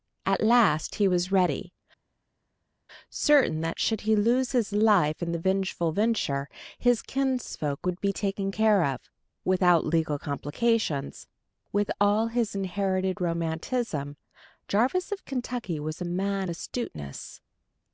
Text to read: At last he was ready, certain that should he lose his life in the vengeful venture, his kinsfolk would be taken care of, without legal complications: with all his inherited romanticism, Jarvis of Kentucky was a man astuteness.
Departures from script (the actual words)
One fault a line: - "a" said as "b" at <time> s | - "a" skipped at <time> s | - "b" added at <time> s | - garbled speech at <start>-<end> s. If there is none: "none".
none